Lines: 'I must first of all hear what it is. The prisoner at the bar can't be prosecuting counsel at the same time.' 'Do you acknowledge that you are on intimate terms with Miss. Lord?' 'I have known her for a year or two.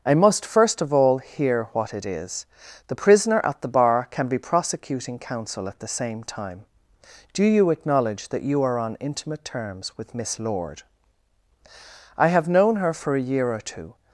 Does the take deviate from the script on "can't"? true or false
true